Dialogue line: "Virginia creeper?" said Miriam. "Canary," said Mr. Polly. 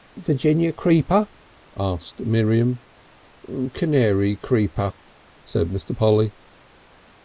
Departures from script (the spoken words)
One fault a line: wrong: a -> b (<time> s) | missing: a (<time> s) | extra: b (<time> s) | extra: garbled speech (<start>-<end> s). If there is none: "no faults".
wrong: said -> asked (1.8 s)
extra: creeper (4.3 s)